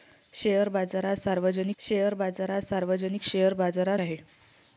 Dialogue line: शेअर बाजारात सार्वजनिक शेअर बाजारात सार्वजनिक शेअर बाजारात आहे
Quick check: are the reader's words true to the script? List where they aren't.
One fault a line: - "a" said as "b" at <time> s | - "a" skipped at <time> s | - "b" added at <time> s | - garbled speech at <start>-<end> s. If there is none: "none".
none